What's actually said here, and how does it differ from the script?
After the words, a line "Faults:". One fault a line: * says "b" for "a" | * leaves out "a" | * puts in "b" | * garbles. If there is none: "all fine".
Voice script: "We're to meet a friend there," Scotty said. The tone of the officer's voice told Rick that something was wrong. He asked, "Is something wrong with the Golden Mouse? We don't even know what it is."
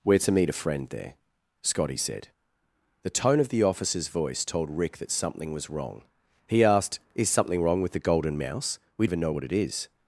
"We're to meet a friend there," Scotty said. The tone of the officer's voice told Rick that something was wrong. He asked, "Is something wrong with the Golden Mouse? We even know what it is."
Faults:
* leaves out "don't"